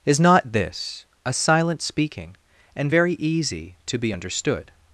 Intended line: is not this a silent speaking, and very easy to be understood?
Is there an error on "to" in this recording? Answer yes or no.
no